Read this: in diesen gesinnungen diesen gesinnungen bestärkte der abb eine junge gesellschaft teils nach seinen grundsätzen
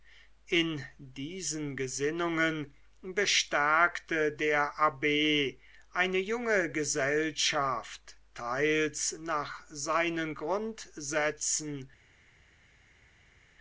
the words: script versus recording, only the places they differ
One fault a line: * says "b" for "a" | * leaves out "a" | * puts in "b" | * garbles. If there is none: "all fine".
* leaves out "diesen gesinnungen"